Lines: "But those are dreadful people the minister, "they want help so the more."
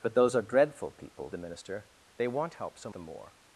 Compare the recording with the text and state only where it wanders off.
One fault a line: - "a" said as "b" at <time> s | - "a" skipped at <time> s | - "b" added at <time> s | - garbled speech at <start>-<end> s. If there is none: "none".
none